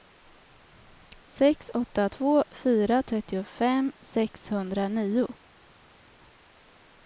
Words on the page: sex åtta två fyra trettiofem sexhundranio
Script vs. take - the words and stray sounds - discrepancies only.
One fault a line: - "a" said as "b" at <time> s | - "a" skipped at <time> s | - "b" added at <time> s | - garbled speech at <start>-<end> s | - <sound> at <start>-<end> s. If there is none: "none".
none